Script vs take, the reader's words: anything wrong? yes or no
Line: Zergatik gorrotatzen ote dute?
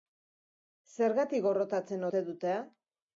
no